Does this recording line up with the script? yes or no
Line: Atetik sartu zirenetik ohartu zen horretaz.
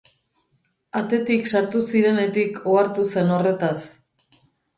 yes